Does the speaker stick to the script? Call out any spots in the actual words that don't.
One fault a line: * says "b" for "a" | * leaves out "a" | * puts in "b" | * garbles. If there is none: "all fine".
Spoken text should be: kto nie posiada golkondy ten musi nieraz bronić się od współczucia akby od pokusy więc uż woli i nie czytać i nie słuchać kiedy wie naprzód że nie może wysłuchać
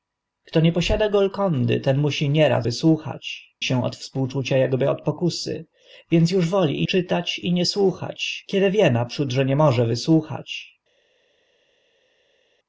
* says "wysłuchać" for "bronić"
* leaves out "nie"